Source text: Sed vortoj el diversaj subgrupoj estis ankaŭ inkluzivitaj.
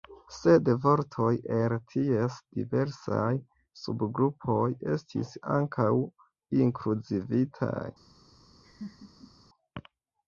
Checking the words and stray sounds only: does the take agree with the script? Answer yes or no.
no